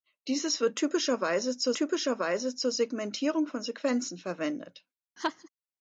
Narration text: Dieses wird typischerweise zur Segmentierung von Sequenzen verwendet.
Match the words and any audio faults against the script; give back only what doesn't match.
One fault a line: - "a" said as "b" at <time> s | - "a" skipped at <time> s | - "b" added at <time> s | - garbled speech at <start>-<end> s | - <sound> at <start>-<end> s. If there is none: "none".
- "typischerweise zur" added at 1.8 s
- laugh at 5.2-5.5 s